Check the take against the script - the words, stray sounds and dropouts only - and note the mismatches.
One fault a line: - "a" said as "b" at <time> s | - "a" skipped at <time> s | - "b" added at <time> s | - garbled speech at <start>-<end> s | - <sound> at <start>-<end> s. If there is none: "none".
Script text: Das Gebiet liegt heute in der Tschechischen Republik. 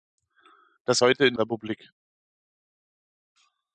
- "Gebiet liegt" skipped at 1.0 s
- "der Tschechischen" skipped at 1.3 s